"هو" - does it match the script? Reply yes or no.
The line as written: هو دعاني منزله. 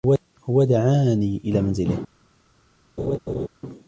yes